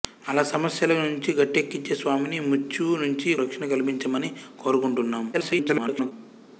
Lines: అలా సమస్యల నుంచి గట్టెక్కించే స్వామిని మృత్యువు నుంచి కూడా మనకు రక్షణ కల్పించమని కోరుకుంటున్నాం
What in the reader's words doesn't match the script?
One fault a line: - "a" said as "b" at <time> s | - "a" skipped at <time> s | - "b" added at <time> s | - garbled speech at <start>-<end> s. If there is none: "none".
- "కూడా మనకు" skipped at 3.4 s
- garbled speech at 5.3-6.1 s